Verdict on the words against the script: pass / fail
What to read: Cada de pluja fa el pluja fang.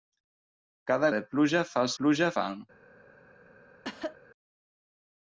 pass